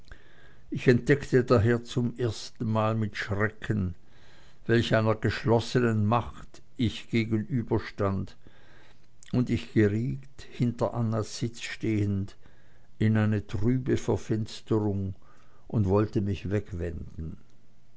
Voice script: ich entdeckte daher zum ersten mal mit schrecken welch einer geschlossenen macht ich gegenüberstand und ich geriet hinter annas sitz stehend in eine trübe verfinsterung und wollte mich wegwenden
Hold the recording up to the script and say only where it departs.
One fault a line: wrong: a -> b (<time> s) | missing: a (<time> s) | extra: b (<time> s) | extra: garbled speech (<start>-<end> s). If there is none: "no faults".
no faults